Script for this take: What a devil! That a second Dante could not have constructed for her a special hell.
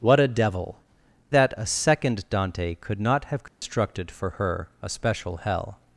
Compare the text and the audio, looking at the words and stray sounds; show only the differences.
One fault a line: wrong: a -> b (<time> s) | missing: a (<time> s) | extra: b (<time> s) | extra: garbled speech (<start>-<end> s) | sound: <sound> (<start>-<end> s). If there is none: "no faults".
sound: dropout (3.5-3.6 s)